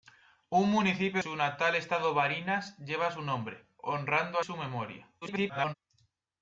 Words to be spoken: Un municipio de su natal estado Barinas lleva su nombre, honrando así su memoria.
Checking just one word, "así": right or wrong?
wrong